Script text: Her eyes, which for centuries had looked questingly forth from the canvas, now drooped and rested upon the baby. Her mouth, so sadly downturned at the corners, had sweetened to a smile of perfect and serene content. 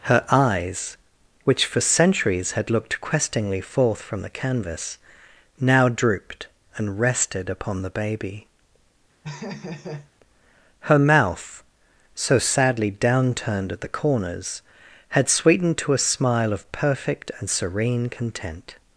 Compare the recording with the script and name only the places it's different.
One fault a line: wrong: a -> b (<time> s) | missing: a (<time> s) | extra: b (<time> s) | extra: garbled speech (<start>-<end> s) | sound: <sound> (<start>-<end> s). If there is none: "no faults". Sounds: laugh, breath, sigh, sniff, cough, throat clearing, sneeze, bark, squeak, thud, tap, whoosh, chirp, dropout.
sound: laugh (9.2-10.1 s)